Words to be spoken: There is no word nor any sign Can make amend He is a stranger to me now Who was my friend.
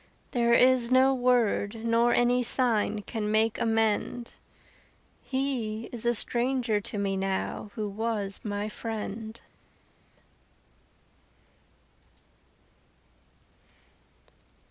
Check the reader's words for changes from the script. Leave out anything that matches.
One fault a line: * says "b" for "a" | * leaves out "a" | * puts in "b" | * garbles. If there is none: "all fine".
all fine